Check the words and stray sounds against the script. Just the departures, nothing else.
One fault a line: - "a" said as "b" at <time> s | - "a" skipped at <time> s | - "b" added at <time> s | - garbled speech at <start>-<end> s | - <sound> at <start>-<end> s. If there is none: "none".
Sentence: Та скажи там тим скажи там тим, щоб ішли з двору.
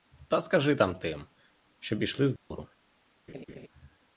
- "скажи там тим" skipped at 1.2 s
- dropout at 2.4-2.5 s
- laugh at 3.3-3.7 s